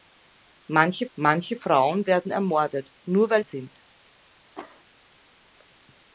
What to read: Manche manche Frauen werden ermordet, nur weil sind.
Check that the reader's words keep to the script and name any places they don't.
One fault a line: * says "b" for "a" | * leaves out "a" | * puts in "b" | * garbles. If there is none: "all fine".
all fine